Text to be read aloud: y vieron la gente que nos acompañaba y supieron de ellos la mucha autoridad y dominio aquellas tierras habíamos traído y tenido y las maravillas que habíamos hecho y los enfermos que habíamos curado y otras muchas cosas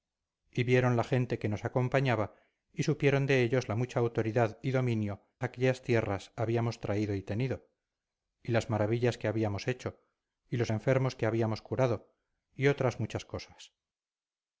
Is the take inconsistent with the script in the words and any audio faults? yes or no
no